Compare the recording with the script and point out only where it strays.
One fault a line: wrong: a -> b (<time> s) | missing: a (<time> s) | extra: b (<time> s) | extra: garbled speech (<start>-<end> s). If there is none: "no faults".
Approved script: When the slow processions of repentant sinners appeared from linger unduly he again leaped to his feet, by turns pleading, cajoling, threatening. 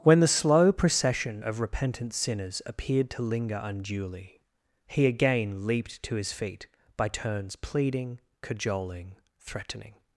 wrong: processions -> procession (0.7 s)
wrong: from -> to (3.1 s)